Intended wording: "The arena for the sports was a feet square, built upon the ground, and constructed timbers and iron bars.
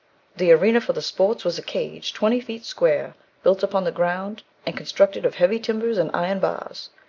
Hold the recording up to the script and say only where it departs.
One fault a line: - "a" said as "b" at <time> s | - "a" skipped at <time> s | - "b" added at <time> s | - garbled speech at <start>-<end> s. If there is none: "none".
- "cage twenty" added at 1.6 s
- "of heavy" added at 5.2 s